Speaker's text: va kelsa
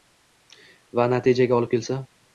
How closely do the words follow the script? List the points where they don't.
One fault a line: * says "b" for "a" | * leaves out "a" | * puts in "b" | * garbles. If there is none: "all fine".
* puts in "natijaga olib"